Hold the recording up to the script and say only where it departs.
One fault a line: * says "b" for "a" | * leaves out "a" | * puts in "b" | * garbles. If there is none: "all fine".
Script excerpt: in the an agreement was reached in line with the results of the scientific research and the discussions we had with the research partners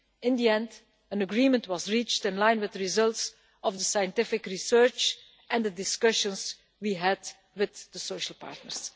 * puts in "end"
* says "social" for "research"